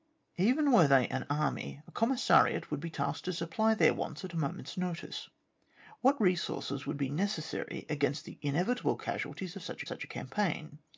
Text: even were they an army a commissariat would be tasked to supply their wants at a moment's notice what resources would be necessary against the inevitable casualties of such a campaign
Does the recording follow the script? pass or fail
fail